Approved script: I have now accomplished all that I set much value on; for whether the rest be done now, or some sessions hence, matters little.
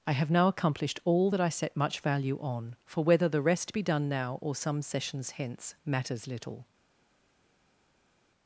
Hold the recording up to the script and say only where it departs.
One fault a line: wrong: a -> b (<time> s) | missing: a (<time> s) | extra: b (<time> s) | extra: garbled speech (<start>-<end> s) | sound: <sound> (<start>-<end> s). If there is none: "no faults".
no faults